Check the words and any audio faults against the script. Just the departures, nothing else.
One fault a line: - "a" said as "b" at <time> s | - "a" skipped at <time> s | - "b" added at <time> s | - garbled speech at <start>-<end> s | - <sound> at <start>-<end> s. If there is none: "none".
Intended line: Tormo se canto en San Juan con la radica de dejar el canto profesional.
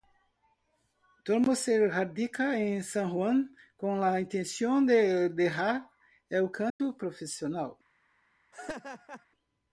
- "canto" said as "radica" at 1.9 s
- "radica" said as "intención" at 4.2 s
- dropout at 6.7-6.8 s
- laugh at 8.5-9.3 s